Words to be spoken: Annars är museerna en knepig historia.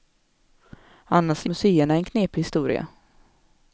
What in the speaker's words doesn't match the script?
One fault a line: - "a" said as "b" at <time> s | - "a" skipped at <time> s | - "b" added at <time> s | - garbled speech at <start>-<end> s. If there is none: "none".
none